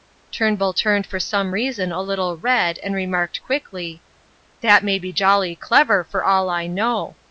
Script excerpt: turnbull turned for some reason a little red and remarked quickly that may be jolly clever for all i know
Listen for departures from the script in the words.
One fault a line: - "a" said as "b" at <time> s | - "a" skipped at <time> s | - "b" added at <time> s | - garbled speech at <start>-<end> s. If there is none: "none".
none